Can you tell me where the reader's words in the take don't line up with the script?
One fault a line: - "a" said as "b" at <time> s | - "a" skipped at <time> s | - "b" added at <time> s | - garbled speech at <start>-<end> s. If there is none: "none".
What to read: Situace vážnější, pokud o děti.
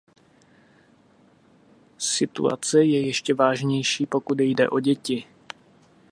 - "je ještě" added at 2.8 s
- "jde" added at 4.4 s